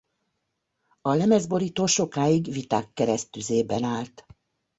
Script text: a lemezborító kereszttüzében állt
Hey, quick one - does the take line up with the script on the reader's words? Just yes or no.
no